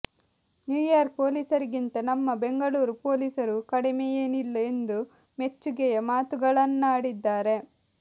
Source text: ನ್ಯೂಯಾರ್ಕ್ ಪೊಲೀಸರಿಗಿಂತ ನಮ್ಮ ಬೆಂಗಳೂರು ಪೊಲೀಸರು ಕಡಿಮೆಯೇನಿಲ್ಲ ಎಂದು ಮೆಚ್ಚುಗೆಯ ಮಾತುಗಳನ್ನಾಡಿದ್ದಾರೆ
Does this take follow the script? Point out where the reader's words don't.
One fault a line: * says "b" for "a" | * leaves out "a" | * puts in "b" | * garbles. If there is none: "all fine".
all fine